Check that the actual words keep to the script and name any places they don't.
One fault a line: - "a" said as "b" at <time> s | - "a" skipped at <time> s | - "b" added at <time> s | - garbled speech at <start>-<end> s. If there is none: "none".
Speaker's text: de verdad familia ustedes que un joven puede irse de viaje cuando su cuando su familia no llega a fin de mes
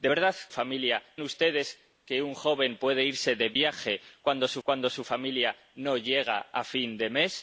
none